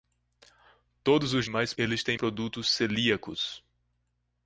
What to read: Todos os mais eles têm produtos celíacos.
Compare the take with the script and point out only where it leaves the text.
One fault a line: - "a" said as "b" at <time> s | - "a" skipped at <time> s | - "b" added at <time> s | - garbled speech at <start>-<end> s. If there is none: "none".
none